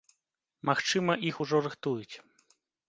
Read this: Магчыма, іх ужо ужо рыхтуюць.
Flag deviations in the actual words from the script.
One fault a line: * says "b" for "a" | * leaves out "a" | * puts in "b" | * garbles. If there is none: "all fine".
* leaves out "ужо"